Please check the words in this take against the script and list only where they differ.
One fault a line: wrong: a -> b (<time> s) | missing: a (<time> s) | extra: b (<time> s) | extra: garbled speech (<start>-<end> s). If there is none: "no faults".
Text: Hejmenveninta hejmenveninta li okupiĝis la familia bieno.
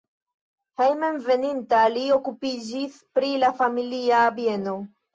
missing: hejmenveninta (1.8 s)
extra: pri (3.2 s)